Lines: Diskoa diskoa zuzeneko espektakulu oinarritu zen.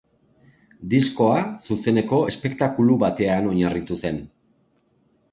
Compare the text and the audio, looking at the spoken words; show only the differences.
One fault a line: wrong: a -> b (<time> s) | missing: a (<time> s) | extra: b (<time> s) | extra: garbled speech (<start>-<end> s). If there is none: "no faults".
missing: diskoa (1.4 s)
extra: batean (3.0 s)